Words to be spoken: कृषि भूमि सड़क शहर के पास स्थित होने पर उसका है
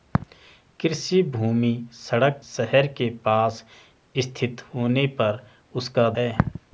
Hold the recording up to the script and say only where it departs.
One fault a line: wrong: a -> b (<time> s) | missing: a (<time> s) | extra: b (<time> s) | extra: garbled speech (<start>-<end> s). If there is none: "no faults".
no faults